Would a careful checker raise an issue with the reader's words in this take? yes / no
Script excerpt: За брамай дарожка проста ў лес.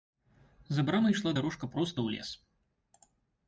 yes